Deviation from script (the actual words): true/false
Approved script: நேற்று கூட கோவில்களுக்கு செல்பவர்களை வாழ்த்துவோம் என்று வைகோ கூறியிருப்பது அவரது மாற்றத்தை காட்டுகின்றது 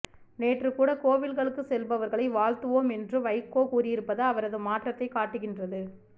false